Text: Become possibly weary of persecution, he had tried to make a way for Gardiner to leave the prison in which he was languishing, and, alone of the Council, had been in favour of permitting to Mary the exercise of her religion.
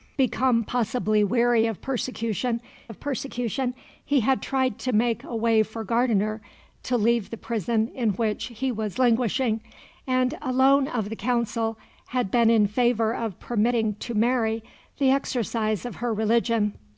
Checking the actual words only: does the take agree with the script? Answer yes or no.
no